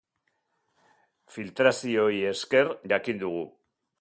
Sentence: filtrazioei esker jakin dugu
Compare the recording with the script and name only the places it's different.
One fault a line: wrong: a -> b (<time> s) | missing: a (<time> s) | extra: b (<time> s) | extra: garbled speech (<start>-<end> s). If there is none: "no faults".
no faults